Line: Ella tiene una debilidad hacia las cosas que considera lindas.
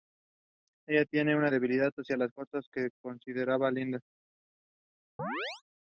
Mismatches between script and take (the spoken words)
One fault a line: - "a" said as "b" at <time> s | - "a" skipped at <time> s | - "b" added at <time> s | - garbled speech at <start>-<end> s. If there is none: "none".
none